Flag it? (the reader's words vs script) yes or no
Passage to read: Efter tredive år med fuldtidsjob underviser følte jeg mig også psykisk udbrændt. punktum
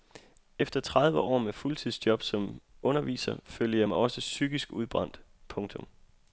yes